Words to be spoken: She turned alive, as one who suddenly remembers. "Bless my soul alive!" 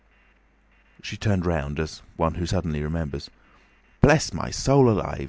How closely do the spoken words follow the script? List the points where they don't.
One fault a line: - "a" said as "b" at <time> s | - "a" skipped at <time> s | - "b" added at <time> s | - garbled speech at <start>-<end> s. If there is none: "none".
- "alive" said as "round" at 1.4 s